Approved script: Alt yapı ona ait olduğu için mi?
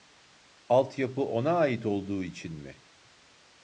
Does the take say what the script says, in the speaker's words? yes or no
yes